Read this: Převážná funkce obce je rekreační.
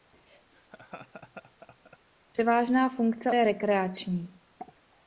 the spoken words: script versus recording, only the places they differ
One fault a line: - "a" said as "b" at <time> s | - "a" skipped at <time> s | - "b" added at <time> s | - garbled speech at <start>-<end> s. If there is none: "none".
- "obce" skipped at 3.3 s